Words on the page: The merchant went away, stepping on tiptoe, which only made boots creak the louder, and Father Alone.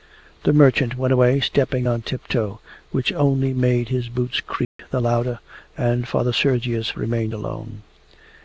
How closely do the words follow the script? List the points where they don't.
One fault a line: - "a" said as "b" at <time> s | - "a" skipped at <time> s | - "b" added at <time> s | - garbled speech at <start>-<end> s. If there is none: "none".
- "his" added at 3.9 s
- "Sergius remained" added at 6.3 s